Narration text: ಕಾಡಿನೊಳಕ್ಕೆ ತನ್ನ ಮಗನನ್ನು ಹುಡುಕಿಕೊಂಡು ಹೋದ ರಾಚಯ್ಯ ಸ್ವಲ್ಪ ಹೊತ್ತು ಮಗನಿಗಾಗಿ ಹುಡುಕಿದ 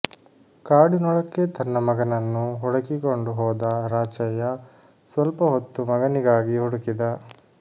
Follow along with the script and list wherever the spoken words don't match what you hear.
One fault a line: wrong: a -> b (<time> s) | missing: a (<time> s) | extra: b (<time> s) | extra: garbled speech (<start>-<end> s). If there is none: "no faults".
no faults